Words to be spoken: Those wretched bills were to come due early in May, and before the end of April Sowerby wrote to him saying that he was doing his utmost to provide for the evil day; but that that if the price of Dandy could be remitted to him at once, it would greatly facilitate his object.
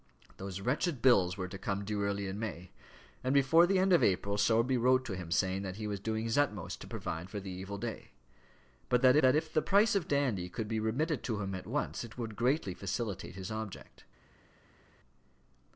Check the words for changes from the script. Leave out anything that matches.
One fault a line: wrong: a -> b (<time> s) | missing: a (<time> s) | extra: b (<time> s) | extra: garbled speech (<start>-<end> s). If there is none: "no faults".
no faults